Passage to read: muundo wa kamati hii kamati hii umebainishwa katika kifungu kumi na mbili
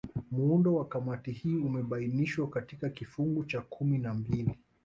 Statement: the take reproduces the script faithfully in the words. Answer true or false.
false